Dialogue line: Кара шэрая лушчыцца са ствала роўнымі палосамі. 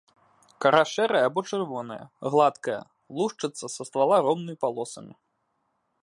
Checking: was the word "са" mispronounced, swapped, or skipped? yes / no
no